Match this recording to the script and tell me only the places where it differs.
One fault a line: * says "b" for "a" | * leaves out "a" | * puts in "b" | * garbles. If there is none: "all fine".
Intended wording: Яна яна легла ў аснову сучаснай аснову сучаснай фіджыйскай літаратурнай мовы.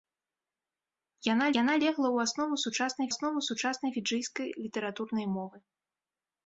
all fine